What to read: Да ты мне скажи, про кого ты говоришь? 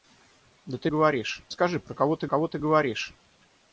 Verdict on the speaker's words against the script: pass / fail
fail